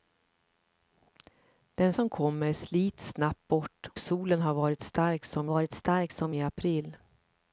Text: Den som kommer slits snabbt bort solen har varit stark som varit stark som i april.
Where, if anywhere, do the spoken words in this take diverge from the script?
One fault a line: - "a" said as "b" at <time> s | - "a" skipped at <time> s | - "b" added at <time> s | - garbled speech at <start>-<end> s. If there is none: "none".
none